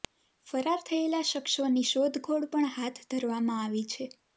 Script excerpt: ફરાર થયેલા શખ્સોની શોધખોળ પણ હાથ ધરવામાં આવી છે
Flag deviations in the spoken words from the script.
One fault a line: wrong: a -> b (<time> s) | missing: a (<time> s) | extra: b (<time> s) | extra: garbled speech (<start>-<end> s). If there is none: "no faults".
no faults